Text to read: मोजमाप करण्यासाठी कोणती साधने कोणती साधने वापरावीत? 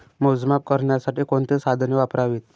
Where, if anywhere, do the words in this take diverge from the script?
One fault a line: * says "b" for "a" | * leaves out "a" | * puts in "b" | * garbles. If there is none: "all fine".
* leaves out "कोणती साधने"